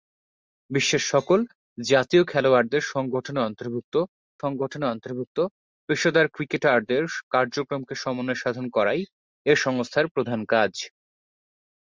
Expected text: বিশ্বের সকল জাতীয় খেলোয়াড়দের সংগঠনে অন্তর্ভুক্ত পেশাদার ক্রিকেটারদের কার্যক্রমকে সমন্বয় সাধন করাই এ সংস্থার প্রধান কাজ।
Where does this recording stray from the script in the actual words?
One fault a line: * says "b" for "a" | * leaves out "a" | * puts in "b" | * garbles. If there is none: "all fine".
* puts in "সংগঠনে অন্তর্ভুক্ত"